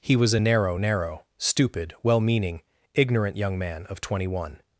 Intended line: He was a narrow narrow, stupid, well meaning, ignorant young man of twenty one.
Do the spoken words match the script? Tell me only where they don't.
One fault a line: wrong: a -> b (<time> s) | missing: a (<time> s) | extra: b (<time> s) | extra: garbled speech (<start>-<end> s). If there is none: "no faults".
no faults